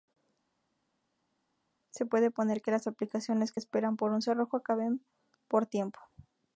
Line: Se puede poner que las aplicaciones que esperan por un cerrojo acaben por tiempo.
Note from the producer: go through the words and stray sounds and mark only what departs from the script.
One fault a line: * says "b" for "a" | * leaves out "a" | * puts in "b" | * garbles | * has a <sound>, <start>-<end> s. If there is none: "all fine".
all fine